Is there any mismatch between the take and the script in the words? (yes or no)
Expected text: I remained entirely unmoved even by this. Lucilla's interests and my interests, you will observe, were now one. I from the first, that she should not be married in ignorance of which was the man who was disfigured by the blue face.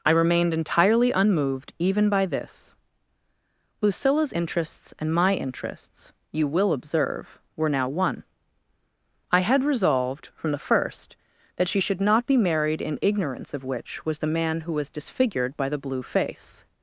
yes